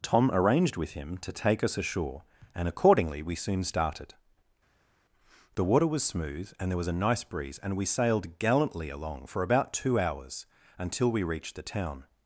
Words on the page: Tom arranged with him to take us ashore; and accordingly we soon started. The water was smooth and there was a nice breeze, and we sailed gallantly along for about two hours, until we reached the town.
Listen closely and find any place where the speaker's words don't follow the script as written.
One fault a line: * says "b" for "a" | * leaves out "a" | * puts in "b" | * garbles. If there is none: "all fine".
all fine